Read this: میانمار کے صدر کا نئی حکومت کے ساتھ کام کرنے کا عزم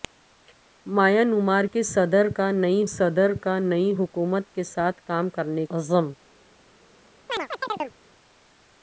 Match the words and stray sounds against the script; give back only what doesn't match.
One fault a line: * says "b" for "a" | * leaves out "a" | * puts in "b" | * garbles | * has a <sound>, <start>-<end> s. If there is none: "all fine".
* puts in "صدر کا نئی"
* leaves out "کا"
* has a chirp, 7.3-7.9 s